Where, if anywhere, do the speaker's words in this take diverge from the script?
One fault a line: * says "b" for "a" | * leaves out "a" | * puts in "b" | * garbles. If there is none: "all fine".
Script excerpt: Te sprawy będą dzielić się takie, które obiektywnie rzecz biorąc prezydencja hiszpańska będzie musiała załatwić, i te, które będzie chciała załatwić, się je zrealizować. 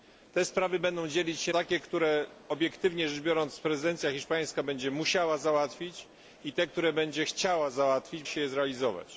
all fine